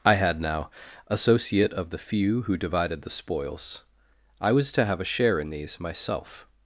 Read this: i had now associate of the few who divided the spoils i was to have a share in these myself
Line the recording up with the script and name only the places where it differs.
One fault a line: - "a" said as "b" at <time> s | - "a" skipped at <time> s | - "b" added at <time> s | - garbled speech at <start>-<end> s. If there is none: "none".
none